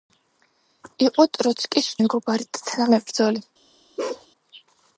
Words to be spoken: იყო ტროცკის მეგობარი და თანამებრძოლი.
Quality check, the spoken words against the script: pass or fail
pass